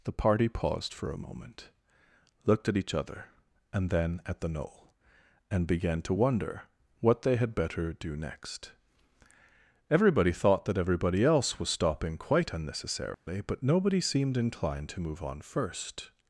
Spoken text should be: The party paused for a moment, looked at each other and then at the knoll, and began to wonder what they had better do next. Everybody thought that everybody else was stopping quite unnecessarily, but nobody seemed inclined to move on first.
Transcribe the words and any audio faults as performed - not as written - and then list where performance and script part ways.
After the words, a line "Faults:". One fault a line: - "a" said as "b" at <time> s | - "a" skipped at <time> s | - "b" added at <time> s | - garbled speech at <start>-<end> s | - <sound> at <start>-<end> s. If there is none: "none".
The party paused for a moment, looked at each other and then at the knoll, and began to wonder what they had better do next. Everybody thought that everybody else was stopping quite unnecessarily, but nobody seemed inclined to move on first.
Faults:
- dropout at 13.1-13.3 s